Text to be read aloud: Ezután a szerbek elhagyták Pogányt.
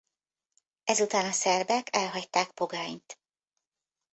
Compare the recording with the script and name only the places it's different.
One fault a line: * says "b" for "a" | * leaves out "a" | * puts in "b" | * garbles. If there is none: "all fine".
all fine